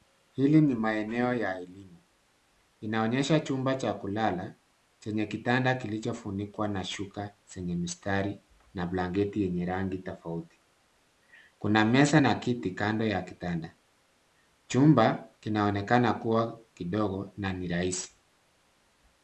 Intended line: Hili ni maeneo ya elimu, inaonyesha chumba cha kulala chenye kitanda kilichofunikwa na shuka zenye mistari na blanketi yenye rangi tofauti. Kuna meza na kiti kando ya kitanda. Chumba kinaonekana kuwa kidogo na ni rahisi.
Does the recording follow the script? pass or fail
pass